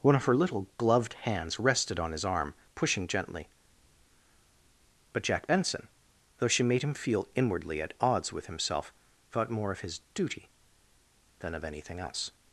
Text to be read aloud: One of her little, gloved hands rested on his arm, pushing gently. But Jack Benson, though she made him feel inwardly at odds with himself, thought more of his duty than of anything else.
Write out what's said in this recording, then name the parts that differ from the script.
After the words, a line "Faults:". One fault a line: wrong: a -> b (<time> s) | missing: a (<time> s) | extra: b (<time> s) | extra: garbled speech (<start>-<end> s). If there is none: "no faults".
One of her little, gloved hands rested on his arm, pushing gently. But Jack Benson, though she made him feel inwardly at odds with himself, thought more of his duty than of anything else.
Faults:
no faults